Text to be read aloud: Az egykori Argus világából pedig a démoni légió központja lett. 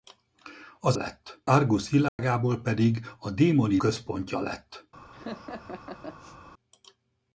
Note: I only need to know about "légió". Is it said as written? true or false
false